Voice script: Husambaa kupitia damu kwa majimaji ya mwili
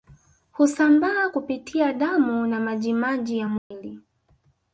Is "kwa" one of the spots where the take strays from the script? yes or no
yes